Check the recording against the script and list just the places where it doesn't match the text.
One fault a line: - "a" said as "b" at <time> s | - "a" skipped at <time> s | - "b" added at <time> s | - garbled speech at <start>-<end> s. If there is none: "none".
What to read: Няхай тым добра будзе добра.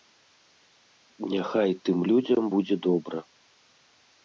- "добра" said as "людзям" at 2.1 s